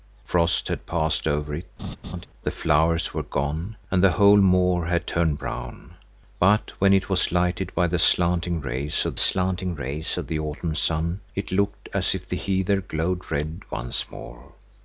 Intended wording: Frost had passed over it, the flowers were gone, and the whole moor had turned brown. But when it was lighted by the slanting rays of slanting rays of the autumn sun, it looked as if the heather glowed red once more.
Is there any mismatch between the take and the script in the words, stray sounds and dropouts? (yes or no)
yes